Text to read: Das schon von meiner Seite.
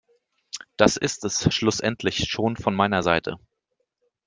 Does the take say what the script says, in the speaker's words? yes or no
no